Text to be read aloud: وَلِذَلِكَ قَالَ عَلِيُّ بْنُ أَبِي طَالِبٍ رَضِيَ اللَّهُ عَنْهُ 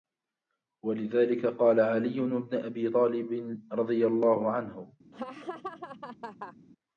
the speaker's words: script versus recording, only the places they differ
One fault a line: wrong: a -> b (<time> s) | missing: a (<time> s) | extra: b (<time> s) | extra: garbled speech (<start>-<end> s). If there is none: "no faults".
no faults